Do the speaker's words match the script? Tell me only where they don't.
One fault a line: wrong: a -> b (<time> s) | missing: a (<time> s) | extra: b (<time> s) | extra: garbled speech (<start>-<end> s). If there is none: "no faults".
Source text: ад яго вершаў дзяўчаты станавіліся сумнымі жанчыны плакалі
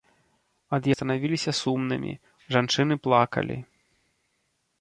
missing: яго вершаў дзяўчаты (0.8 s)